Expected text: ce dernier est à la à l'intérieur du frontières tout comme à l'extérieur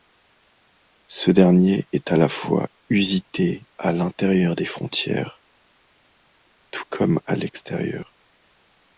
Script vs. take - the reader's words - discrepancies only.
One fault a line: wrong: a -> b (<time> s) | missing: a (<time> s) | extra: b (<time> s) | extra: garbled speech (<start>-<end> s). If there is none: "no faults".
extra: fois usité (2.3 s)
wrong: du -> des (4.5 s)